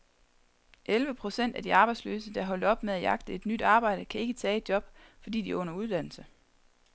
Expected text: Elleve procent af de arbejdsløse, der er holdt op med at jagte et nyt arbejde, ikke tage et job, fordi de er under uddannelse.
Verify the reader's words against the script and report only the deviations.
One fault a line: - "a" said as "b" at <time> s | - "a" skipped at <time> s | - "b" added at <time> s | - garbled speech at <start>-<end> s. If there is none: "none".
- "kan" added at 4.0 s